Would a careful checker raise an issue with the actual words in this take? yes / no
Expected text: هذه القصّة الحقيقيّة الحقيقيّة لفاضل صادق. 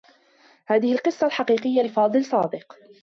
yes